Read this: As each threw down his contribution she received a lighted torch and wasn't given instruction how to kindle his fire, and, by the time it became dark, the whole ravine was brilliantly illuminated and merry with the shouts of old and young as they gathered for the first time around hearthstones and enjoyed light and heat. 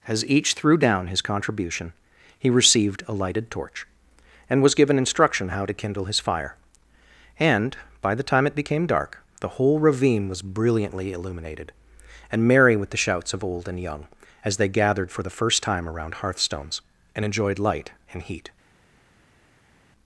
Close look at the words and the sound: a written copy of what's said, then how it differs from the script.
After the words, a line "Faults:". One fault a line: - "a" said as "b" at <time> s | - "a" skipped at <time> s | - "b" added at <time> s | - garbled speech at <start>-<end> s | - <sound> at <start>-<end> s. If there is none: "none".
As each threw down his contribution he received a lighted torch and was given instruction how to kindle his fire, and, by the time it became dark, the whole ravine was brilliantly illuminated and merry with the shouts of old and young as they gathered for the first time around hearthstones and enjoyed light and heat.
Faults:
- "she" said as "he" at 2.4 s
- "wasn't" said as "was" at 4.6 s